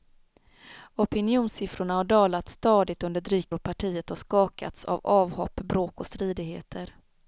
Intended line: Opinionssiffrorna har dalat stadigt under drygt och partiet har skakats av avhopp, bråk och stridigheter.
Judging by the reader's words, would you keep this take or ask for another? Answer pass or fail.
pass